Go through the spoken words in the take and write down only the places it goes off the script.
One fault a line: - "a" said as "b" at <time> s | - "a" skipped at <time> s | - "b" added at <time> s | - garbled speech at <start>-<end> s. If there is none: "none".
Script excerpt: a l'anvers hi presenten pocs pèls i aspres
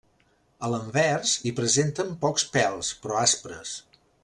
- "i" said as "però" at 3.1 s